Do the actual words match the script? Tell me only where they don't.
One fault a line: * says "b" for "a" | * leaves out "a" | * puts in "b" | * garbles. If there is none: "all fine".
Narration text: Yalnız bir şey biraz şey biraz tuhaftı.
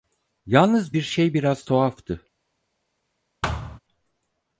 * leaves out "şey biraz"